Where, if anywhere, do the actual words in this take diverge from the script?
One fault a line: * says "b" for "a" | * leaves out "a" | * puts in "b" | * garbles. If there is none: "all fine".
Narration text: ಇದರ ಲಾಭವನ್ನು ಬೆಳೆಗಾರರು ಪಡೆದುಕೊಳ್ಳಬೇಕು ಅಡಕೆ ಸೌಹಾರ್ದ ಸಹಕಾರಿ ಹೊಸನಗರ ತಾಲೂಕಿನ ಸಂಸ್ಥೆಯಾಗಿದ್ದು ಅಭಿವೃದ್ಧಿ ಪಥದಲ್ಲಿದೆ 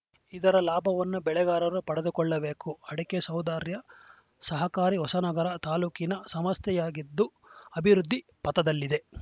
all fine